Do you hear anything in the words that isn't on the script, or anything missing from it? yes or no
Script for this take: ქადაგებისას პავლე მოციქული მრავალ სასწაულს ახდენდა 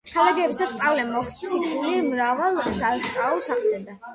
no